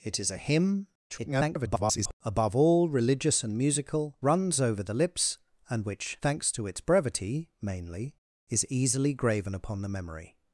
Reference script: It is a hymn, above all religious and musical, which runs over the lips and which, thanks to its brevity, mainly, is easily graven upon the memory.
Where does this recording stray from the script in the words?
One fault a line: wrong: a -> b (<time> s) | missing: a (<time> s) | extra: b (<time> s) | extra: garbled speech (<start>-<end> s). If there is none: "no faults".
extra: garbled speech (1.1-2.1 s)
missing: which (4.2 s)